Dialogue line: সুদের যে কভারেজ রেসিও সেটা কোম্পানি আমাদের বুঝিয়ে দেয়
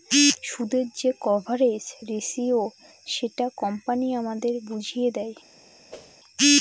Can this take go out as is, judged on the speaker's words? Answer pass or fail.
pass